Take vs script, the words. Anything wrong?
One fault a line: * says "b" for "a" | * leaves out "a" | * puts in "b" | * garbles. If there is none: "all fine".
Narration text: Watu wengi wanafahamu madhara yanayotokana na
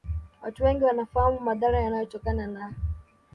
all fine